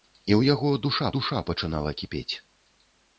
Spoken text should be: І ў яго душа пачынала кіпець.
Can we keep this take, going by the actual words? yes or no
no